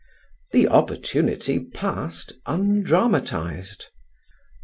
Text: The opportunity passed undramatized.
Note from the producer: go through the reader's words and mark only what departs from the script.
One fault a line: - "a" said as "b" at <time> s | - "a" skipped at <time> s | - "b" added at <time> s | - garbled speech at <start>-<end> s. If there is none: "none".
none